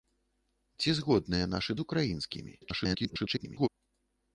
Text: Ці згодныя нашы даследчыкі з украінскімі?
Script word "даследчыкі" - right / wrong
wrong